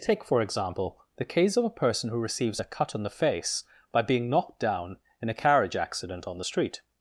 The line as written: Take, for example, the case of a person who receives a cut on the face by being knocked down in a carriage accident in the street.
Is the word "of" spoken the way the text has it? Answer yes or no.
yes